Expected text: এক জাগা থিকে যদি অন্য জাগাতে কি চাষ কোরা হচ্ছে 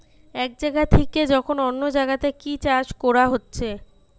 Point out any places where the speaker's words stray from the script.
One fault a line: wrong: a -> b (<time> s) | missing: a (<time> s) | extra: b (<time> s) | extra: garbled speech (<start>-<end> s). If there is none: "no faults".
wrong: যদি -> যখন (1.3 s)